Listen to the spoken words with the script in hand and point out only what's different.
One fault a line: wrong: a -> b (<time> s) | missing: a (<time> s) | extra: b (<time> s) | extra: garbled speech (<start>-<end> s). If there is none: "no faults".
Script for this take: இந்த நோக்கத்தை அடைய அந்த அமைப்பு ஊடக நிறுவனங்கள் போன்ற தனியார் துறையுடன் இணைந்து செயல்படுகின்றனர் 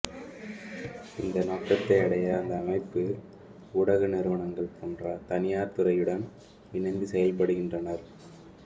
no faults